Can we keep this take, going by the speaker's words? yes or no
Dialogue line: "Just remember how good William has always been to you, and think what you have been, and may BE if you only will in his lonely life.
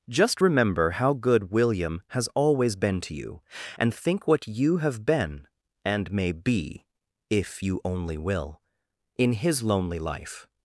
yes